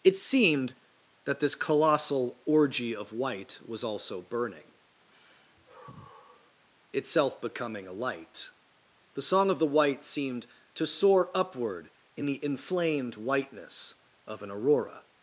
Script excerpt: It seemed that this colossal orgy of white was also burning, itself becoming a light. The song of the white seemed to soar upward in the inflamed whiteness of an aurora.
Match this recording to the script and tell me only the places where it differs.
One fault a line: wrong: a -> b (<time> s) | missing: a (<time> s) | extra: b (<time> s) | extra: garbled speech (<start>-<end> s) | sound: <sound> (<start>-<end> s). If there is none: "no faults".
sound: sigh (5.1-6.6 s)